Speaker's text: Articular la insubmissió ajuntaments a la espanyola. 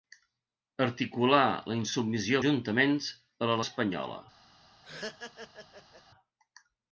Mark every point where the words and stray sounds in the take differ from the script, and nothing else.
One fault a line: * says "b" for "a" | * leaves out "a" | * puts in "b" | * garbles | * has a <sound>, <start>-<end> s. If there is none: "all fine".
* has a laugh, 4.8-6.0 s